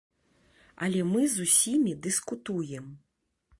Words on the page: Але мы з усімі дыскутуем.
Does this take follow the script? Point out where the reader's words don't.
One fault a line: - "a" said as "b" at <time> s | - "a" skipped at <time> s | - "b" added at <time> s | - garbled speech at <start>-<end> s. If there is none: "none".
none